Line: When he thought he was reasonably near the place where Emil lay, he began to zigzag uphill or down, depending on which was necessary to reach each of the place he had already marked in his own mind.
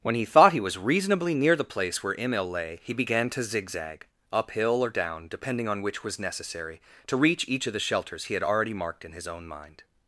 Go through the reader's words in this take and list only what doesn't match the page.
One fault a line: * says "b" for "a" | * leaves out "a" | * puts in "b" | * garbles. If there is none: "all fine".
* says "shelters" for "place"